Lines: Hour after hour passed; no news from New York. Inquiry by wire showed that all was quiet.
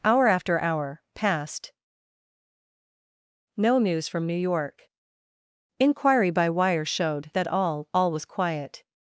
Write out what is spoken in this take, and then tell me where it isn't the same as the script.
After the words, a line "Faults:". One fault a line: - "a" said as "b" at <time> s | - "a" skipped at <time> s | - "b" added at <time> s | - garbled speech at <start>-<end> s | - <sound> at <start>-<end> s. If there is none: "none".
Hour after hour passed; no news from New York. Inquiry by wire showed that all all was quiet.
Faults:
- "all" added at 7.9 s